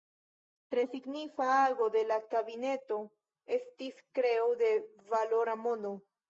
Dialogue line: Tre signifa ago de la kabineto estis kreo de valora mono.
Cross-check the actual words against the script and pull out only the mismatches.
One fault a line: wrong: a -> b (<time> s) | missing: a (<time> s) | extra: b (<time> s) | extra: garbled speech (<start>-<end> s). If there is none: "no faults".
no faults